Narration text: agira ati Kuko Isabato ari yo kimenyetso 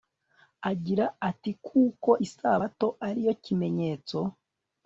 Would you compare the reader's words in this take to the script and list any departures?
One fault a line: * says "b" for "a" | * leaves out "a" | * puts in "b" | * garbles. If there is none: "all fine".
all fine